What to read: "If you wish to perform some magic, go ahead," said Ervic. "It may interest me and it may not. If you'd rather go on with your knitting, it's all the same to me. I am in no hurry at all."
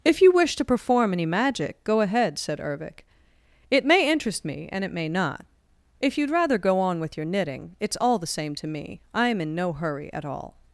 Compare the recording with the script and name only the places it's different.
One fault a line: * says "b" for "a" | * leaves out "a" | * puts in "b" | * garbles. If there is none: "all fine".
* says "any" for "some"